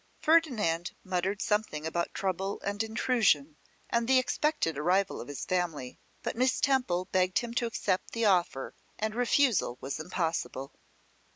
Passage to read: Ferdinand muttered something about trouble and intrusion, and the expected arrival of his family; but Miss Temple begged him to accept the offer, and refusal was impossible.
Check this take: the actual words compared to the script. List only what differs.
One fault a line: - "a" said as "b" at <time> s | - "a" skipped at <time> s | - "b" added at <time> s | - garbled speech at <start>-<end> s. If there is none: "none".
none